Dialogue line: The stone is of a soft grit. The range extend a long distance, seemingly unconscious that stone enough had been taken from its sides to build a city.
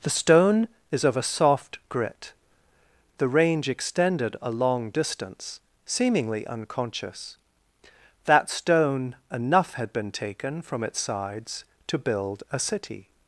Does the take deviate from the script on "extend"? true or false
true